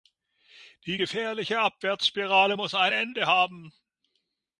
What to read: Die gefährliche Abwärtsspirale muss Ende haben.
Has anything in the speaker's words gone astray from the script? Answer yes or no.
yes